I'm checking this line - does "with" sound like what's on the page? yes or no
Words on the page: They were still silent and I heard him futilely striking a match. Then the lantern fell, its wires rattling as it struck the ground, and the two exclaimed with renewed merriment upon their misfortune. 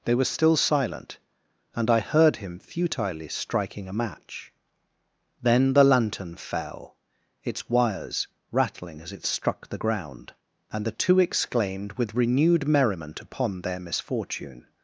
yes